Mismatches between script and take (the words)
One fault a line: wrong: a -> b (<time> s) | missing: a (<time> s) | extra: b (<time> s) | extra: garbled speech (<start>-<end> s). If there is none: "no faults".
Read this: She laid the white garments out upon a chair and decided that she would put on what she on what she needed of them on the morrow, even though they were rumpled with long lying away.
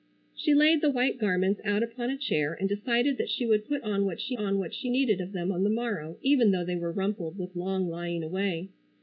no faults